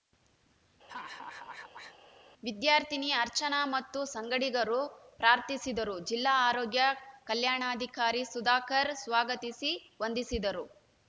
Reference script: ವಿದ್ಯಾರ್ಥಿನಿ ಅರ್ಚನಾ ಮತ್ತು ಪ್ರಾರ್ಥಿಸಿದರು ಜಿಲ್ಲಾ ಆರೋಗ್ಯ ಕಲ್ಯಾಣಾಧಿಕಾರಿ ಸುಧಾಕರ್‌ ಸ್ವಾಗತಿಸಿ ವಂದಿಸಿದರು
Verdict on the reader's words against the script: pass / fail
fail